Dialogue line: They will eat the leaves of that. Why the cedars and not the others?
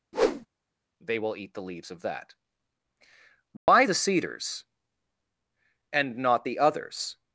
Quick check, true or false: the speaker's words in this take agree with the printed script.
true